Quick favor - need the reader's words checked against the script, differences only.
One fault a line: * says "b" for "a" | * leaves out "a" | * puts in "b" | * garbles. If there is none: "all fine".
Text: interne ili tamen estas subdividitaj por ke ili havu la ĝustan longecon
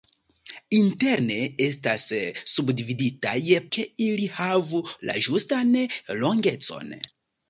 * leaves out "ili tamen"
* leaves out "por"